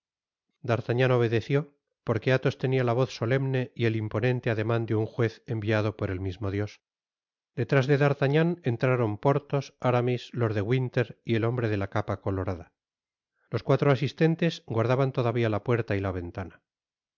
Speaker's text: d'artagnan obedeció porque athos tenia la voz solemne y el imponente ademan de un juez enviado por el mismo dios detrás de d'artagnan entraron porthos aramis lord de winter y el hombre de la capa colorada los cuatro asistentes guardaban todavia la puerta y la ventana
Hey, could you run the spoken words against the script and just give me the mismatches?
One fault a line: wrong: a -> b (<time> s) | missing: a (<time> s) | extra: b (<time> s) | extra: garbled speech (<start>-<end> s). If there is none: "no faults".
no faults